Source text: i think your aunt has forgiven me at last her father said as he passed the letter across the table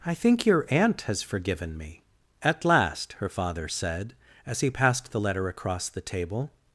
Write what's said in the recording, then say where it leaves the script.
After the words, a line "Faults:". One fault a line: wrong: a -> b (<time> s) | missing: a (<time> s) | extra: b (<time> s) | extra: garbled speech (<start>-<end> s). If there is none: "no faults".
i think your aunt has forgiven me at last her father said as he passed the letter across the table
Faults:
no faults